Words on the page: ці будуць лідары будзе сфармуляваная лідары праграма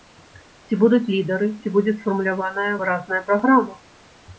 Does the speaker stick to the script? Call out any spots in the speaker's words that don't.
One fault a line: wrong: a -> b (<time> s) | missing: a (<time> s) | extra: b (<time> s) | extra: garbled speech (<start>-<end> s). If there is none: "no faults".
extra: ці (1.6 s)
wrong: лідары -> выразная (2.8 s)